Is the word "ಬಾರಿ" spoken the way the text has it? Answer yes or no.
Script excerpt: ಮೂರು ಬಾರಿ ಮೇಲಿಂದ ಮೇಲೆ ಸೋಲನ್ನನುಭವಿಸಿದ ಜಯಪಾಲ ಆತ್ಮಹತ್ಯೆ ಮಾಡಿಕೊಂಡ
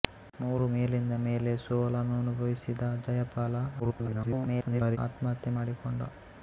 no